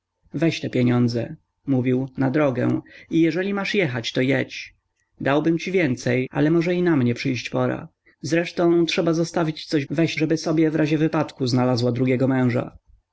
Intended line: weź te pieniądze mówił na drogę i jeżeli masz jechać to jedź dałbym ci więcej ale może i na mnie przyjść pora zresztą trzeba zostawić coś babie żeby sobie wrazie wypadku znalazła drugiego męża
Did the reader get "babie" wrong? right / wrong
wrong